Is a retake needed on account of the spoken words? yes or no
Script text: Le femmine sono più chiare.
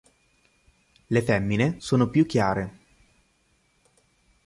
no